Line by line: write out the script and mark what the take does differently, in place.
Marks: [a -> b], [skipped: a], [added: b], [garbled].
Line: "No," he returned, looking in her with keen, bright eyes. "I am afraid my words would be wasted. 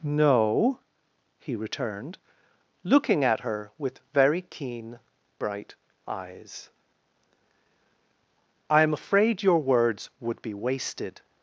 "No," he returned, looking [in -> at] her with [added: very] keen, bright eyes. "I am afraid [my -> your] words would be wasted.